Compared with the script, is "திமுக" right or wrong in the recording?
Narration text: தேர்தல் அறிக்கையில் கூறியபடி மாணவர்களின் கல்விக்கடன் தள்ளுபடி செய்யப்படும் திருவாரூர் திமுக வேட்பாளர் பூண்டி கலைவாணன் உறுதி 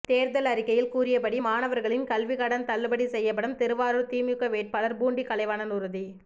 right